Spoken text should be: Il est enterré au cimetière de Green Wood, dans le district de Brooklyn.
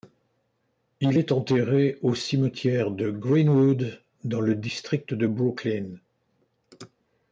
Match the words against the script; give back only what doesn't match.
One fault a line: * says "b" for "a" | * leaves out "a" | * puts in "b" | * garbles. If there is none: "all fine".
all fine